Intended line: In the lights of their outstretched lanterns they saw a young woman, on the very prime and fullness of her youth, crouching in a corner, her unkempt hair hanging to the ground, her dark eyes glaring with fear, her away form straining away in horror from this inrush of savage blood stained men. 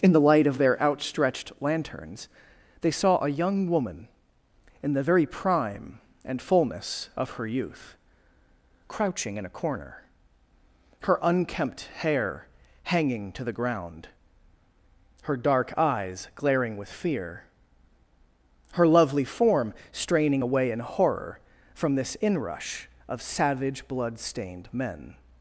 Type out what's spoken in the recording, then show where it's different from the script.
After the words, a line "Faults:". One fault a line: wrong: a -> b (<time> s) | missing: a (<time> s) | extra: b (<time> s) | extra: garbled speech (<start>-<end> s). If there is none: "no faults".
In the light of their outstretched lanterns they saw a young woman, in the very prime and fullness of her youth, crouching in a corner, her unkempt hair hanging to the ground, her dark eyes glaring with fear, her lovely form straining away in horror from this inrush of savage blood stained men.
Faults:
wrong: lights -> light (0.2 s)
wrong: on -> in (4.8 s)
wrong: away -> lovely (18.9 s)